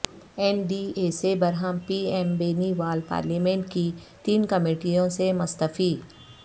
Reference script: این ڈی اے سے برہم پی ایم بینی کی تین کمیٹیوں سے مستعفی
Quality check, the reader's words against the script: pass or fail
fail